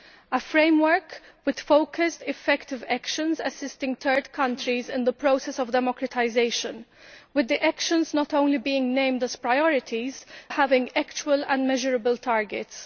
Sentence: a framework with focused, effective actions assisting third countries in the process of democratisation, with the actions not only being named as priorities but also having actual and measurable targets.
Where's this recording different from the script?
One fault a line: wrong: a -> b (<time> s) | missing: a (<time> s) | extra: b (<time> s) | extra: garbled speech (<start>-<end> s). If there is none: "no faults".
missing: but also (10.2 s)